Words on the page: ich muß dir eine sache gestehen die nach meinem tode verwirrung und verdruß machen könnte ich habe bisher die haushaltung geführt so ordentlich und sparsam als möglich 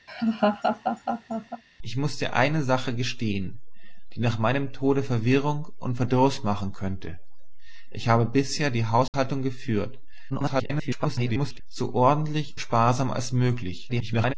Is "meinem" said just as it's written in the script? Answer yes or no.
yes